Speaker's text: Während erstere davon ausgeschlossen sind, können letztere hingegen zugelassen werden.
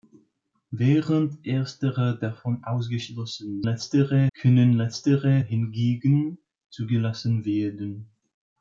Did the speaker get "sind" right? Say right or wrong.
wrong